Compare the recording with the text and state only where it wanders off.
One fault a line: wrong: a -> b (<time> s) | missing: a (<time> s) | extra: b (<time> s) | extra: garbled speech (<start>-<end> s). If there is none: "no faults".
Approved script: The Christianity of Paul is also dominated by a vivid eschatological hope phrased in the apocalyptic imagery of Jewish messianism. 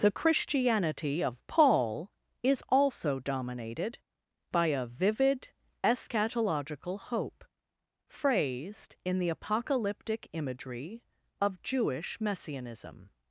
no faults